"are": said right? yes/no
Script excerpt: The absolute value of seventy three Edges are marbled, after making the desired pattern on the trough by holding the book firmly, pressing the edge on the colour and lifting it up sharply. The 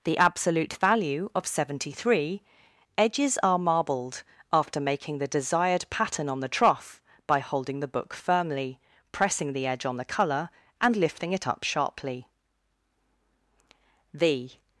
yes